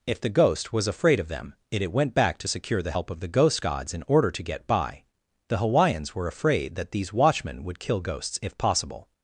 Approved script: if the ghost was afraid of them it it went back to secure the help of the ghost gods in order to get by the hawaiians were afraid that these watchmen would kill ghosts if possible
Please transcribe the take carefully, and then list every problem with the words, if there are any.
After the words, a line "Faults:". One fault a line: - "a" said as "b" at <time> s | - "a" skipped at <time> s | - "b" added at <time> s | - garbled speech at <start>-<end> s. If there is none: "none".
if the ghost was afraid of them it it went back to secure the help of the ghost gods in order to get by the hawaiians were afraid that these watchmen would kill ghosts if possible
Faults:
none